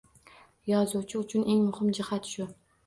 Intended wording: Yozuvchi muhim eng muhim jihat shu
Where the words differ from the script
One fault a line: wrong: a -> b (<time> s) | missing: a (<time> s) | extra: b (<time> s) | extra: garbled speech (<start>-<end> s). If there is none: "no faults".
wrong: muhim -> uchun (1.2 s)